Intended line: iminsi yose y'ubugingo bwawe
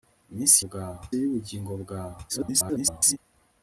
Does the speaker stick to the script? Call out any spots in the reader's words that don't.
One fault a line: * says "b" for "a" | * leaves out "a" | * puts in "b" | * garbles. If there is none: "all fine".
* says "bwawe" for "yose"
* garbles